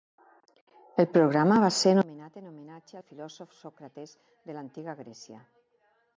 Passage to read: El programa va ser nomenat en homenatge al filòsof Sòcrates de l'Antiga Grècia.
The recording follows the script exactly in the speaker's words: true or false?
true